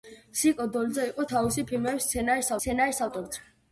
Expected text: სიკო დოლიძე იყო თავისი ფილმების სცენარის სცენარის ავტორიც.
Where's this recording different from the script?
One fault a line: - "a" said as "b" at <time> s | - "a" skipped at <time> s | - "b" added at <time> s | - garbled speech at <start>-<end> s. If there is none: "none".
none